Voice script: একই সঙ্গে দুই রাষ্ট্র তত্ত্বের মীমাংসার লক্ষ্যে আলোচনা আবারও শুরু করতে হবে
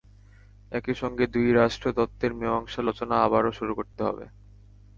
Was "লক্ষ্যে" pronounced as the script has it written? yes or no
no